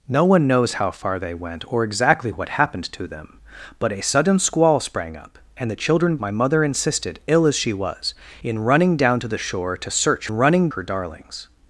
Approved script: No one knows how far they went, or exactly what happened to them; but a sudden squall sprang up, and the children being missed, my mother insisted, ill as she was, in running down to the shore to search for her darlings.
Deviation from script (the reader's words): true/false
true